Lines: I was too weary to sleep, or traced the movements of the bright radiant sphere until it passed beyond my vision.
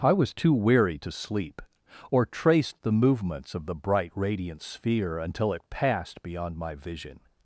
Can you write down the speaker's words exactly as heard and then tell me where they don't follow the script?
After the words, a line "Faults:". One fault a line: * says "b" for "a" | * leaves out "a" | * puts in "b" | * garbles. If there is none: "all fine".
I was too weary to sleep, or traced the movements of the bright radiant sphere until it passed beyond my vision.
Faults:
all fine